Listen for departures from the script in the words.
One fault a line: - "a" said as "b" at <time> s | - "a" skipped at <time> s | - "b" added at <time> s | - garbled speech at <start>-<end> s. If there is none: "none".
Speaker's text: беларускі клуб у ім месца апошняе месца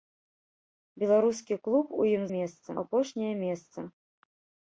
none